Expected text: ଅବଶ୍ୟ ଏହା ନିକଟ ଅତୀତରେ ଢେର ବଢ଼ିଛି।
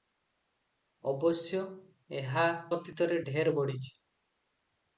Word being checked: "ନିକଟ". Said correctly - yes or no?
no